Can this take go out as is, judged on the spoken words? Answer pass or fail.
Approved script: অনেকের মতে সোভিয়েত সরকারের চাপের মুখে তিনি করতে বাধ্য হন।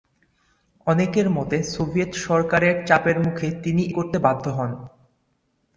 pass